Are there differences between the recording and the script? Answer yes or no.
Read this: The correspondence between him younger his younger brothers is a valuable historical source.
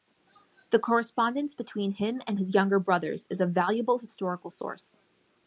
yes